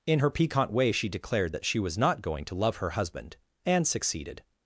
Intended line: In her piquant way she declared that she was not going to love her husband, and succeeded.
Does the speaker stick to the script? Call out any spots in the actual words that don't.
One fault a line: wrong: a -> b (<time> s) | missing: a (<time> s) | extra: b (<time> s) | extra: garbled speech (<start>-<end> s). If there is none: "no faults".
no faults